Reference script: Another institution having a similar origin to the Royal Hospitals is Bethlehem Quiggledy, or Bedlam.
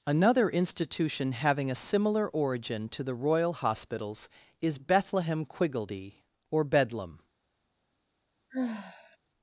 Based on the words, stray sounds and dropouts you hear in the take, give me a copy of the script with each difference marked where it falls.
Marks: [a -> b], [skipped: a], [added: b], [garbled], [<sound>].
Another institution having a similar origin to the Royal Hospitals is Bethlehem Quiggledy, or Bedlam. [sigh]